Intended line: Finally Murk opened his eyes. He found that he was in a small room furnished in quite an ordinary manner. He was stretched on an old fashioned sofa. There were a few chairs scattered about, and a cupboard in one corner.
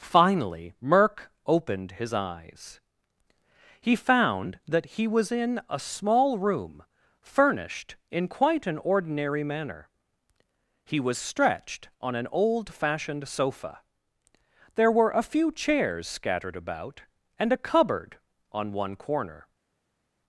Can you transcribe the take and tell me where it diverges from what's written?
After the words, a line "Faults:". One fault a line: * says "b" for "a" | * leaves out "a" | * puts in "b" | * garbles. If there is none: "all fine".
Finally Murk opened his eyes. He found that he was in a small room furnished in quite an ordinary manner. He was stretched on an old fashioned sofa. There were a few chairs scattered about, and a cupboard on one corner.
Faults:
* says "on" for "in"